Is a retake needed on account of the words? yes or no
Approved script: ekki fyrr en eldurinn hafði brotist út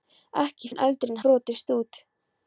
yes